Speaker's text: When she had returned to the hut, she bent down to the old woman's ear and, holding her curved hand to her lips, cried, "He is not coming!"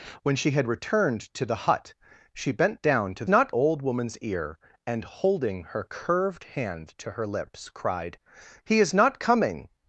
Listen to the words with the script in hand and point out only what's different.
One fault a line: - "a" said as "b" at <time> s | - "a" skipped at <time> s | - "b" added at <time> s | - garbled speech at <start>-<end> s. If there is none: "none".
- "the" said as "not" at 3.3 s